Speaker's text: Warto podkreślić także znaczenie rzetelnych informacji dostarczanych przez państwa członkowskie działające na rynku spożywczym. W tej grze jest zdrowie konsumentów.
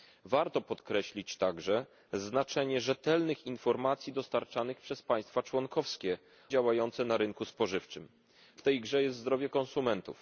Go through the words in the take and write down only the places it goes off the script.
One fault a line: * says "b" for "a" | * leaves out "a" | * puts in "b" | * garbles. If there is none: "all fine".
all fine